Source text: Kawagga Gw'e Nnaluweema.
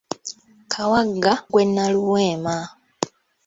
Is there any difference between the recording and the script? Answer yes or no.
no